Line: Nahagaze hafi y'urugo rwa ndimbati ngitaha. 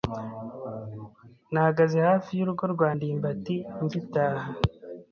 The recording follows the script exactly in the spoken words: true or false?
true